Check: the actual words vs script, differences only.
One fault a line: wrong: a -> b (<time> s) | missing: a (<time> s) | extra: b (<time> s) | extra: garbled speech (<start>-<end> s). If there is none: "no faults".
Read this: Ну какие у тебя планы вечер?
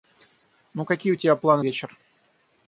no faults